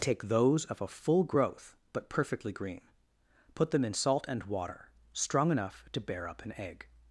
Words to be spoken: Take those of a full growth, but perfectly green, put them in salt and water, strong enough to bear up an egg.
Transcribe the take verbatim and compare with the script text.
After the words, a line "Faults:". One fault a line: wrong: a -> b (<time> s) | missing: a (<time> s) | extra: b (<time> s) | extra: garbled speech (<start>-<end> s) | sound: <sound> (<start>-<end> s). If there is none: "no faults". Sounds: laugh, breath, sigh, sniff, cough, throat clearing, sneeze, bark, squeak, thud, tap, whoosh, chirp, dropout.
Take those of a full growth, but perfectly green, put them in salt and water, strong enough to bear up an egg.
Faults:
no faults